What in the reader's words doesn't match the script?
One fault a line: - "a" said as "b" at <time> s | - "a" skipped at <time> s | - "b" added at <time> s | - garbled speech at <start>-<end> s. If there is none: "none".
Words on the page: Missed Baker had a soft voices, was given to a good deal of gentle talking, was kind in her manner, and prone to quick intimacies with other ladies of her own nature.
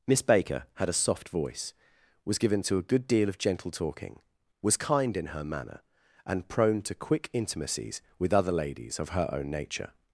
- "Missed" said as "Miss" at 0.1 s
- "voices" said as "voice" at 1.3 s